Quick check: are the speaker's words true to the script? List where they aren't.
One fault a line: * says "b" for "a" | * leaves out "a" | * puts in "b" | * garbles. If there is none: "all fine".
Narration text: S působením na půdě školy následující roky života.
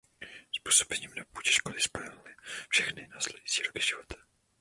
* puts in "spojil všechny"